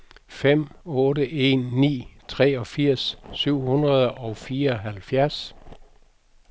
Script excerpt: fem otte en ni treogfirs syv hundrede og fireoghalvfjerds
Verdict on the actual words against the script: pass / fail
pass